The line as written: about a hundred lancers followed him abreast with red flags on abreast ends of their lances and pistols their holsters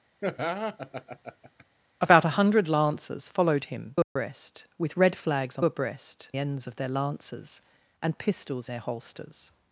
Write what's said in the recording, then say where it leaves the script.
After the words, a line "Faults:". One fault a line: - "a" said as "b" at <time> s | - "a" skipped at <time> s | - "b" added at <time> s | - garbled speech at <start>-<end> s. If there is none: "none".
about a hundred lancers followed him abreast with red flags on abreast ends of their lances and pistols their holsters
Faults:
none